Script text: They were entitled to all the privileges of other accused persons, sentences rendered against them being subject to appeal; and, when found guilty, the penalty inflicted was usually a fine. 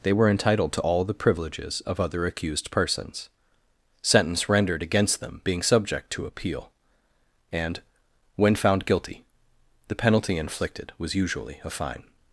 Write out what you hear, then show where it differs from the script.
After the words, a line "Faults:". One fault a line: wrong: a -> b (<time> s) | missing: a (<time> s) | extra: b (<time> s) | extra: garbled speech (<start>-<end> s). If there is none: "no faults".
They were entitled to all the privileges of other accused persons, sentence rendered against them being subject to appeal; and, when found guilty, the penalty inflicted was usually a fine.
Faults:
wrong: sentences -> sentence (4.0 s)